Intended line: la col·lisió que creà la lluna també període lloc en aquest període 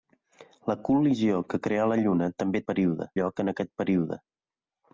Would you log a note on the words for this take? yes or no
no